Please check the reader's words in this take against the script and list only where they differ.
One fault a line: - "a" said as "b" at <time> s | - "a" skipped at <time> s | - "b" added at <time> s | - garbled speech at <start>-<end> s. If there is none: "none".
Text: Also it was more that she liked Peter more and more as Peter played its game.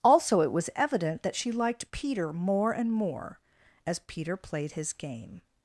- "more" said as "evident" at 0.8 s
- "its" said as "his" at 4.7 s